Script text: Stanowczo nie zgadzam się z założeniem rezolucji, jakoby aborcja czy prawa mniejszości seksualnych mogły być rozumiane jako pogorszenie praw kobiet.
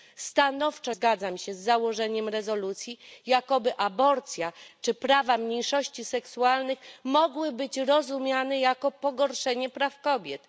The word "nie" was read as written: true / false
false